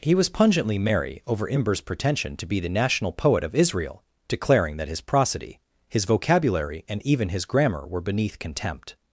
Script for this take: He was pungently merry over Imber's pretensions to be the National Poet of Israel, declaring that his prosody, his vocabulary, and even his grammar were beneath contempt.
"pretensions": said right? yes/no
no